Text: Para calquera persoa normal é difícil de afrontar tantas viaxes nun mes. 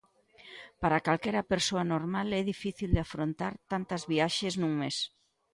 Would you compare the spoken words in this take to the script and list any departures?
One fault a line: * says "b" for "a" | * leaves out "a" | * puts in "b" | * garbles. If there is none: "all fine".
all fine